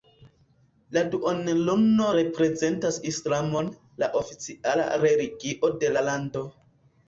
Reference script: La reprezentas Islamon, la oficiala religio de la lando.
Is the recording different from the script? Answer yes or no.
yes